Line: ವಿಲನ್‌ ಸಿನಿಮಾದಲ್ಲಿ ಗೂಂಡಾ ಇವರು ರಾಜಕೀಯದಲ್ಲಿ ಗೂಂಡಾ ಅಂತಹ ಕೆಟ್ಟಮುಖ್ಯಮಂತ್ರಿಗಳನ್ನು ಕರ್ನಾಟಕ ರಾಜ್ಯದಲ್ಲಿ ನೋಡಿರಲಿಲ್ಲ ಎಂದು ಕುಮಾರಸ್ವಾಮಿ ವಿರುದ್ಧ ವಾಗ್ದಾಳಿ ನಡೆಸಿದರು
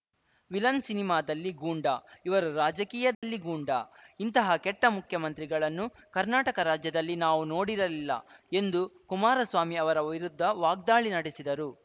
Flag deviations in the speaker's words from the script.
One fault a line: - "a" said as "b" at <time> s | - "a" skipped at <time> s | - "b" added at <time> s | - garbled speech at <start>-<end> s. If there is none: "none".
- "ಅಂತಹ" said as "ಇಂತಹ" at 4.2 s
- "ನಾವು" added at 7.2 s
- "ಅವರ" added at 9.8 s